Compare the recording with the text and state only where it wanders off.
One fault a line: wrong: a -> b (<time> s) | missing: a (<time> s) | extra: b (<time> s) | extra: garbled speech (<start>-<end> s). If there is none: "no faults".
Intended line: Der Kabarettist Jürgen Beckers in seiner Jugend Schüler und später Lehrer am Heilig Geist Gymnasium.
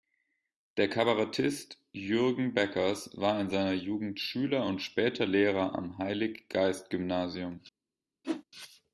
extra: war (3.2 s)